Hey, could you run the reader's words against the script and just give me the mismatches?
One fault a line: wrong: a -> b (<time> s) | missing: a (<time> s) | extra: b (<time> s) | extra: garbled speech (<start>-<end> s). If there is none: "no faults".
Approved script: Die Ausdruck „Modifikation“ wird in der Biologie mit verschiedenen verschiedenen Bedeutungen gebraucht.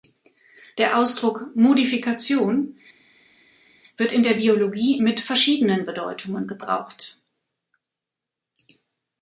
wrong: Die -> Der (0.8 s)
missing: verschiedenen (5.8 s)